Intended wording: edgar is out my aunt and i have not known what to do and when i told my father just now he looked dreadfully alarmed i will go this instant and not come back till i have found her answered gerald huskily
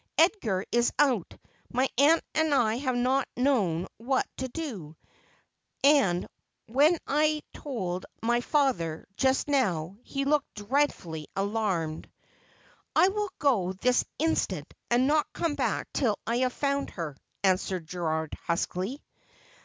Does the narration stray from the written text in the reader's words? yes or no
no